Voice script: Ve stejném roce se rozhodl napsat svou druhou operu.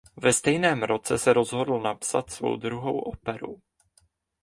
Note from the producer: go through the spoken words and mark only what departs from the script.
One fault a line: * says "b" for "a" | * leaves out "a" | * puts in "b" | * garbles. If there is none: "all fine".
all fine